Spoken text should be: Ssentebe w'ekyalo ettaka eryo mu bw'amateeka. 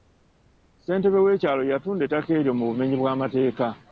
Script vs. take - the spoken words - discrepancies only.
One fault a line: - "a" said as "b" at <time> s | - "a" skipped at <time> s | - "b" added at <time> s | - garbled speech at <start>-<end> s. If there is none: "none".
- "yatunda" added at 1.7 s
- "bumenyi" added at 2.7 s